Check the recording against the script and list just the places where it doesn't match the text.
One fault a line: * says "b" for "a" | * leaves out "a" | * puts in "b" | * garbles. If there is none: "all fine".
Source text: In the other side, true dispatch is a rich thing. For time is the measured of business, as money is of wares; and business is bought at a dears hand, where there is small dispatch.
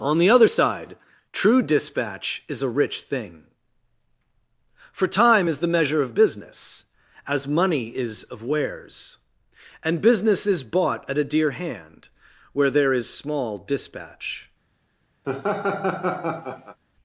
* says "On" for "In"
* says "measure" for "measured"
* says "dear" for "dears"